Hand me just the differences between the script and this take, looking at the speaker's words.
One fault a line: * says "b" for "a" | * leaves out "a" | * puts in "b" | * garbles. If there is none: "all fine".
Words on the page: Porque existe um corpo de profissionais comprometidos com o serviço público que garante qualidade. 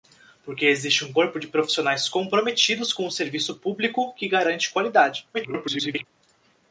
* garbles